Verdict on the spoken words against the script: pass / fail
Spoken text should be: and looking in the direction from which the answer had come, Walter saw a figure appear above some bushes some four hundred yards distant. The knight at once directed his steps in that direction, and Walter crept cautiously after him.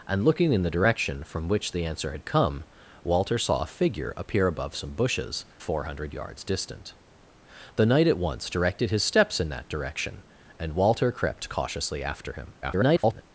fail